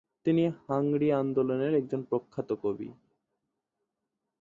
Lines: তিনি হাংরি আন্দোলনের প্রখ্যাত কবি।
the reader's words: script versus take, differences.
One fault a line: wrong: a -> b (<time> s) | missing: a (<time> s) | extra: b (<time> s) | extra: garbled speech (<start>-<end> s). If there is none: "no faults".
extra: একজন (1.7 s)